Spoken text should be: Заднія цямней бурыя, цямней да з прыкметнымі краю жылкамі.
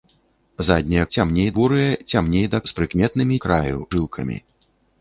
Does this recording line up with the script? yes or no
yes